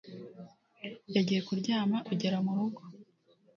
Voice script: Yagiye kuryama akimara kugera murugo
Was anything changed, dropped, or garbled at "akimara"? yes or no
yes